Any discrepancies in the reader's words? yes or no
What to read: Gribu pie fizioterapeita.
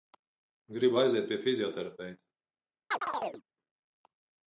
yes